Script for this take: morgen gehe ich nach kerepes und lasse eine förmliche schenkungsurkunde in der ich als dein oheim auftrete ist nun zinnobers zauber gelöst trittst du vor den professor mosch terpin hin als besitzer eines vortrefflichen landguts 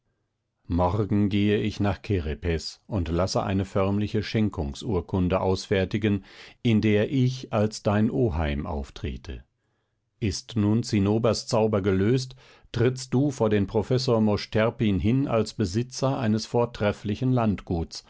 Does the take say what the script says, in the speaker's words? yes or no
no